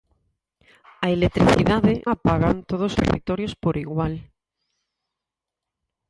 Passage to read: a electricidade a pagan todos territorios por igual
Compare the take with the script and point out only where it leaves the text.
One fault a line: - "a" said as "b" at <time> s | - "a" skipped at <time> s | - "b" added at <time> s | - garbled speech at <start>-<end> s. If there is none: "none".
none